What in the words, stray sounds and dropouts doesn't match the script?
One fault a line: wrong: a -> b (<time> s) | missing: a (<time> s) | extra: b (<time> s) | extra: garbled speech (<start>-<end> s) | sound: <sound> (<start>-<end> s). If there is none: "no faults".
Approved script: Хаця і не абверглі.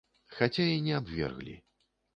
no faults